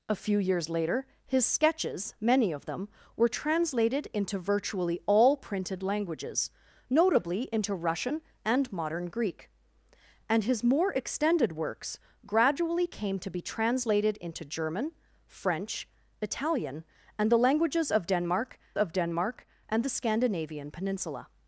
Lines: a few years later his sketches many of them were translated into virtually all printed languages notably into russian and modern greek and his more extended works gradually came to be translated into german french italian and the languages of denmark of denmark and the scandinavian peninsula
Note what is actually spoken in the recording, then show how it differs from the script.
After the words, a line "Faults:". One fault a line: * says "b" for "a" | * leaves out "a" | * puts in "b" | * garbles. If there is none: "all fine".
a few years later his sketches many of them were translated into virtually all printed languages notably into russian and modern greek and his more extended works gradually came to be translated into german french italian and the languages of denmark of denmark and the scandinavian peninsula
Faults:
all fine